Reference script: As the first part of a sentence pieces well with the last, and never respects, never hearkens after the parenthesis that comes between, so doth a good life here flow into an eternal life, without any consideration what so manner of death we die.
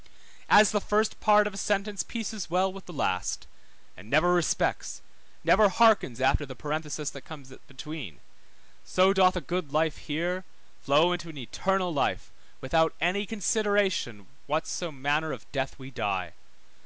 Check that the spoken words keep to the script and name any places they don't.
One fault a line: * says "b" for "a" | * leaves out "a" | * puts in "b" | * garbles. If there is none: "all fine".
all fine